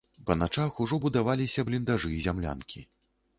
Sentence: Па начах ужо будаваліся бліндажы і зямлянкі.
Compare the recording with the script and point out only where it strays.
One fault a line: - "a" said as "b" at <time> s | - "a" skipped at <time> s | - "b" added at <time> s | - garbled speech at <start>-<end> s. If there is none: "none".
none